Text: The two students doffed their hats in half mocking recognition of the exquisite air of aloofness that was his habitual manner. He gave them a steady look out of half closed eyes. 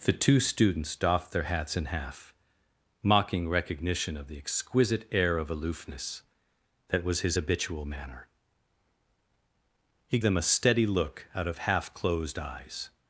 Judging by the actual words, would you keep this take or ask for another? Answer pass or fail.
fail